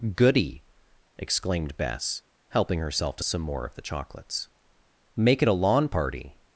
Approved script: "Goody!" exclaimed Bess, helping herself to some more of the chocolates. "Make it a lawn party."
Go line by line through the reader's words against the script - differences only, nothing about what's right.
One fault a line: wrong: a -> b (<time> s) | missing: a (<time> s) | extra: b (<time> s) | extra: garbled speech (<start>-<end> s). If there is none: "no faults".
no faults